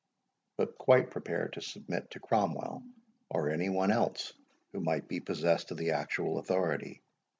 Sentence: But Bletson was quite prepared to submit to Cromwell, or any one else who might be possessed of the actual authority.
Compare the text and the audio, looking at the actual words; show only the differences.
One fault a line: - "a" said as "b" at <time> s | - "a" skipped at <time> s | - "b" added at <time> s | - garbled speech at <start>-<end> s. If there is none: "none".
- "Bletson was" skipped at 0.8 s